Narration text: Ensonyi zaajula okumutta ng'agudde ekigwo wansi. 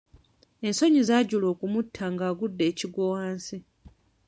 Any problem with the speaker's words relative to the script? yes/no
no